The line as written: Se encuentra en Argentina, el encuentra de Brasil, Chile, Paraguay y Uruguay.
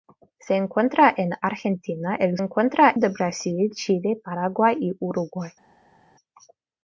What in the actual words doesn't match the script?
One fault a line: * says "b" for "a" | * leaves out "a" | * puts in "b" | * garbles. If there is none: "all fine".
all fine